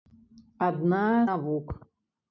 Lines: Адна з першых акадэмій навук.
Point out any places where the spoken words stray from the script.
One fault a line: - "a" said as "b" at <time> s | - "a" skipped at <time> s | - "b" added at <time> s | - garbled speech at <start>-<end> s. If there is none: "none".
- "з першых акадэмій" skipped at 1.0 s